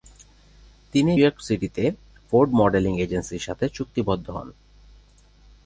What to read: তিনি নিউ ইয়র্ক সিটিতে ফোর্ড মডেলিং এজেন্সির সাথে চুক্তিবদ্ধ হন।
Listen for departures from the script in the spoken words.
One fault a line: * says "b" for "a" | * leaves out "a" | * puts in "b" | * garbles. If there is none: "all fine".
* leaves out "নিউ"